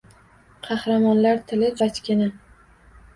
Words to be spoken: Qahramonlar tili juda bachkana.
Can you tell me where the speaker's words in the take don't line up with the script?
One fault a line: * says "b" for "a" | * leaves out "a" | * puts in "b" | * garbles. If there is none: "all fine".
* leaves out "juda"